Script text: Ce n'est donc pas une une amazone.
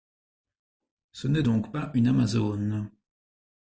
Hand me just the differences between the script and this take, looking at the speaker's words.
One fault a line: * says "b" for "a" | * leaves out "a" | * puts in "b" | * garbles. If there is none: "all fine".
* leaves out "une"